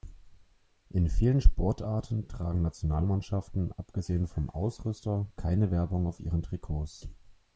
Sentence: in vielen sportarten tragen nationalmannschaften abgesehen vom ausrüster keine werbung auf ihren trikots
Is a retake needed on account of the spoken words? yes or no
no